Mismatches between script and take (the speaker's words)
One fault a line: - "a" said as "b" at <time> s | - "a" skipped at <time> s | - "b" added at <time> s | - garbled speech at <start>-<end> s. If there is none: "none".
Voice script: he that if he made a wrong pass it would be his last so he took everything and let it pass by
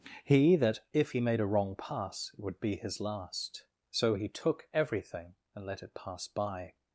none